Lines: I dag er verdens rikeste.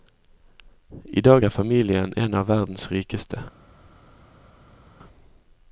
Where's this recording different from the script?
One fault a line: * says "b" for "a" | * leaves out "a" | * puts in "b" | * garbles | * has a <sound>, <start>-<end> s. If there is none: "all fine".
* puts in "familien en av"